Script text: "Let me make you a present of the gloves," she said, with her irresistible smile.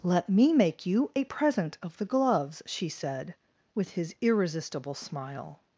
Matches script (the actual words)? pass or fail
fail